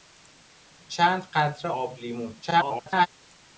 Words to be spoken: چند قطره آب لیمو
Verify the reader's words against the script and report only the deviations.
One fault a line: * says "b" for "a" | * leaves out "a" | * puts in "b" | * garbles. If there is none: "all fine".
* garbles